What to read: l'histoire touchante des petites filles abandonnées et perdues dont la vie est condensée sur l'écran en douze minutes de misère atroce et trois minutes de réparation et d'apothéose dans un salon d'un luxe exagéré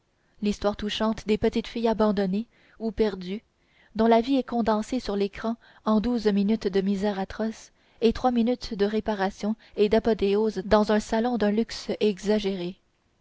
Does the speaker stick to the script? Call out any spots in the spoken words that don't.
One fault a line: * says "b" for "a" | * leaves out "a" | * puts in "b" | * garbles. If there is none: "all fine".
* says "ou" for "et"